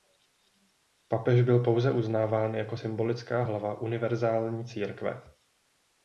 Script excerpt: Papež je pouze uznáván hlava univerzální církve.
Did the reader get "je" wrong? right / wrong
wrong